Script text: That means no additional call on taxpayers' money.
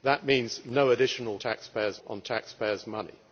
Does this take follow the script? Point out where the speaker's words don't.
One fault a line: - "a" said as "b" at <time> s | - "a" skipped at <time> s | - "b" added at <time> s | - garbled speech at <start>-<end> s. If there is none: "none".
- "call" said as "taxpayers" at 1.3 s